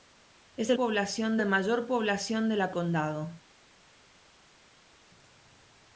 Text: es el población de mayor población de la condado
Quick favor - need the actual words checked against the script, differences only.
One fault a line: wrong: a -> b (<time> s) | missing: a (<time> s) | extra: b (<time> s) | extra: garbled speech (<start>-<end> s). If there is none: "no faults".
no faults